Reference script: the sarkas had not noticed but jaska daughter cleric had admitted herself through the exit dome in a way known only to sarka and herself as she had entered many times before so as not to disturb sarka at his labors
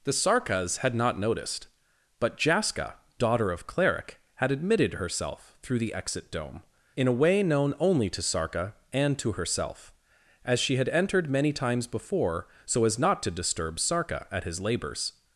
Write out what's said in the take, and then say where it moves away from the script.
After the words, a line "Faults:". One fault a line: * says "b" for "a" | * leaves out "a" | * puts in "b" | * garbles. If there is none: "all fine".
the sarkas had not noticed but jaska daughter of cleric had admitted herself through the exit dome in a way known only to sarka and to herself as she had entered many times before so as not to disturb sarka at his labors
Faults:
* puts in "of"
* puts in "to"